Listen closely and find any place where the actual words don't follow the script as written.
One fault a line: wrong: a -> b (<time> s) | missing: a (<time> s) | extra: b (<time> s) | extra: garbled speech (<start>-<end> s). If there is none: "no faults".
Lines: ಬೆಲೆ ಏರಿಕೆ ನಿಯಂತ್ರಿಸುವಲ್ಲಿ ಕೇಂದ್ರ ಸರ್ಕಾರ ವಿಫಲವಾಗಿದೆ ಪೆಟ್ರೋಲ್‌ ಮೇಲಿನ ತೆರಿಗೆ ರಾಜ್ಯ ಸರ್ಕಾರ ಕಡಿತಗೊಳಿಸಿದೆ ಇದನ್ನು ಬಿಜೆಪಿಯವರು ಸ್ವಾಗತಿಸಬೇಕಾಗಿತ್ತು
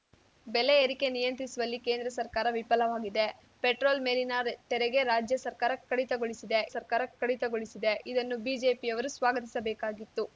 extra: ಸರ್ಕಾರ ಕಡಿತಗೊಳಿಸಿದೆ (6.7 s)